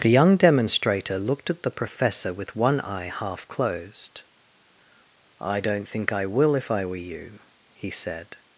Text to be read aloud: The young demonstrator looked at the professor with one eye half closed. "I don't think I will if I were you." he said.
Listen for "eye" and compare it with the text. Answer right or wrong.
right